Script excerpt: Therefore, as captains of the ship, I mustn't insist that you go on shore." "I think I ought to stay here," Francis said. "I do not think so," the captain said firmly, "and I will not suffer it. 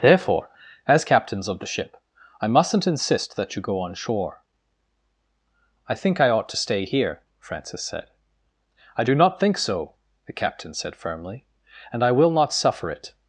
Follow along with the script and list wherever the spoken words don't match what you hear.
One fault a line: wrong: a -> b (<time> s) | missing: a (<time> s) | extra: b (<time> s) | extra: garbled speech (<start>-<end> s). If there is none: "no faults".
no faults